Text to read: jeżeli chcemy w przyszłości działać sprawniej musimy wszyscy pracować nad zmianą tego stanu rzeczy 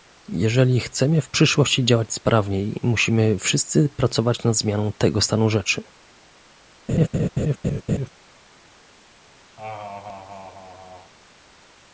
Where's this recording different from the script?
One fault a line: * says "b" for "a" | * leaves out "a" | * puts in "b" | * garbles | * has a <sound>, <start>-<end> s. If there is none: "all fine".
* has a laugh, 6.9-8.1 s
* has a laugh, 9.6-11.1 s